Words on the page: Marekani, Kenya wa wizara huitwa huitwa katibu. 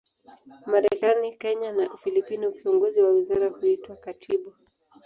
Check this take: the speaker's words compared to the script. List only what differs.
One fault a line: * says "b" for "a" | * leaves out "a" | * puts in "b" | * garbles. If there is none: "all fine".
* puts in "na Ufilipino kiongozi"
* leaves out "huitwa"